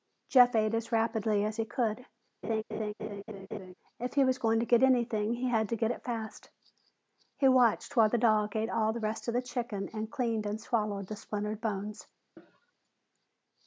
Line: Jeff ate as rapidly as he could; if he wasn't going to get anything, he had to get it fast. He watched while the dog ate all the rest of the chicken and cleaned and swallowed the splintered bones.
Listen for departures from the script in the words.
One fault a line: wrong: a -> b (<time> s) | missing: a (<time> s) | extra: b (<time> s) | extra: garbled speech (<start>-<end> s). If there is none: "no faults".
wrong: wasn't -> was (4.2 s)